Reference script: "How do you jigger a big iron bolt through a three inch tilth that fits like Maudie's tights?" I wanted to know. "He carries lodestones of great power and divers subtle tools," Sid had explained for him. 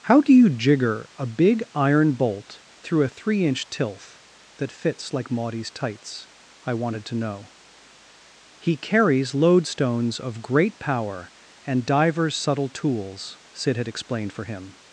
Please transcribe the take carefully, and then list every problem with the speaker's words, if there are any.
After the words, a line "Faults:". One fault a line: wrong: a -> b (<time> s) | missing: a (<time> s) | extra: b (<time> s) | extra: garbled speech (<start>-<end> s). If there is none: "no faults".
"How do you jigger a big iron bolt through a three inch tilth that fits like Maudie's tights?" I wanted to know. "He carries lodestones of great power and divers subtle tools," Sid had explained for him.
Faults:
no faults